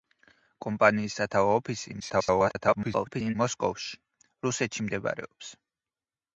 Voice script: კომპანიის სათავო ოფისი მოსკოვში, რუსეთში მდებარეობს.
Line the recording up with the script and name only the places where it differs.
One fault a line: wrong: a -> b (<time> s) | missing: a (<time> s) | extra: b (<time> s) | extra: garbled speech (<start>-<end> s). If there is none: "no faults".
extra: garbled speech (2.0-3.4 s)